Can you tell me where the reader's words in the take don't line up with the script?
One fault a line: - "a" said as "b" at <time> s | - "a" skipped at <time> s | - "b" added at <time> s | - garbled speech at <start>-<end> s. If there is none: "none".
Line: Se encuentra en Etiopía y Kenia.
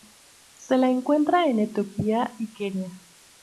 - "la" added at 0.8 s